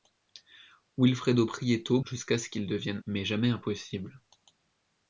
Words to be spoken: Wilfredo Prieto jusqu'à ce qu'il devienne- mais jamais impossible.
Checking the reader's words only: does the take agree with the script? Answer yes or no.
yes